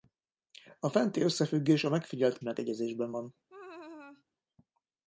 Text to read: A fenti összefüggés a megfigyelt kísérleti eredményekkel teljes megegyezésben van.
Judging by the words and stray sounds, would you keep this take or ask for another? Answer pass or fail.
fail